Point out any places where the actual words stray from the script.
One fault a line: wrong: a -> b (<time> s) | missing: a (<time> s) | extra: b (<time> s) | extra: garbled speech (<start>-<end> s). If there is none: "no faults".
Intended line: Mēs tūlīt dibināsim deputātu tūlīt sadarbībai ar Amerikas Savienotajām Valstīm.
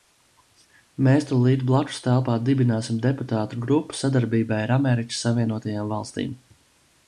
extra: blakustelpā (1.7 s)
wrong: tūlīt -> grupu (3.7 s)